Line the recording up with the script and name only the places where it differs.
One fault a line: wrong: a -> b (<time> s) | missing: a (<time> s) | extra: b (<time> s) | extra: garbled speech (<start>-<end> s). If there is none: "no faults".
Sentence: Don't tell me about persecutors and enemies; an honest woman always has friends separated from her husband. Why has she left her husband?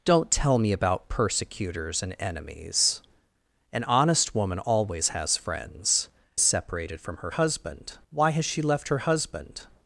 no faults